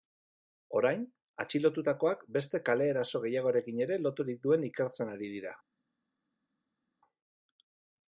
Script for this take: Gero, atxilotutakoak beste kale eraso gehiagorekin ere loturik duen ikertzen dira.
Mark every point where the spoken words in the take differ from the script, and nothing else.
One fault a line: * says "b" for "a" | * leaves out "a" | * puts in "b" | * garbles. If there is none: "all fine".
* says "Orain" for "Gero"
* puts in "ari"